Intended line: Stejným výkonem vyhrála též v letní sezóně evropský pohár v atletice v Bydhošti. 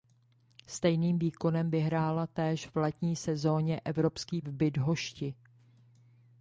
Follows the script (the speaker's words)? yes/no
no